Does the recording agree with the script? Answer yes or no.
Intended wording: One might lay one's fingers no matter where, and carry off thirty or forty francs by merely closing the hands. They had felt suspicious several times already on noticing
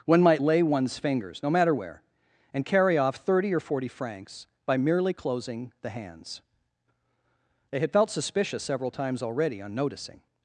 yes